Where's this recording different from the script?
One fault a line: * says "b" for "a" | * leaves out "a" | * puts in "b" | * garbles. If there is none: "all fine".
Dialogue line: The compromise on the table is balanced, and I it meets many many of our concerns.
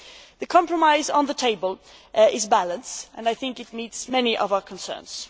* puts in "think"
* leaves out "many"